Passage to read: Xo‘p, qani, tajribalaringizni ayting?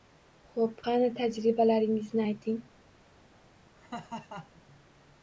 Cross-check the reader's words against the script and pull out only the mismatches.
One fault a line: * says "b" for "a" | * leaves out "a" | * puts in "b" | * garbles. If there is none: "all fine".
all fine